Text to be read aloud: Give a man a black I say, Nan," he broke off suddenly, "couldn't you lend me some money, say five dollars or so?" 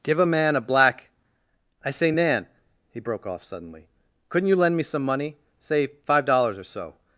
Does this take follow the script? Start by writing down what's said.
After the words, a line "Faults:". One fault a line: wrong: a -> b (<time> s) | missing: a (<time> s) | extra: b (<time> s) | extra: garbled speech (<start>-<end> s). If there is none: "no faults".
Give a man a black I say, Nan," he broke off suddenly, "couldn't you lend me some money, say five dollars or so?"
Faults:
no faults